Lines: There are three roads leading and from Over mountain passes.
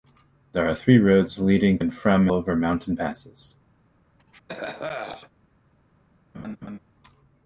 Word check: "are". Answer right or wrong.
right